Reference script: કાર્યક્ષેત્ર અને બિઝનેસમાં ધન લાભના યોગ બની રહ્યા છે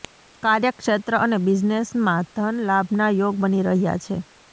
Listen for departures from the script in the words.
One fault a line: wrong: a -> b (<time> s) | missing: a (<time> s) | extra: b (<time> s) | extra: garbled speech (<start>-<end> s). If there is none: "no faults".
no faults